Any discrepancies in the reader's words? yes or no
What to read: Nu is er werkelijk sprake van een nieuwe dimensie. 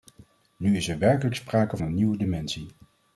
yes